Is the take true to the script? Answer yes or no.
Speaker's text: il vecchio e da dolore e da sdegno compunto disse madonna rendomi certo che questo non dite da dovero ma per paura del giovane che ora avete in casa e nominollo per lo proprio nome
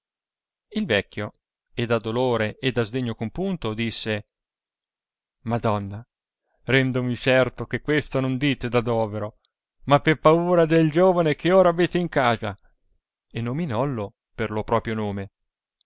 yes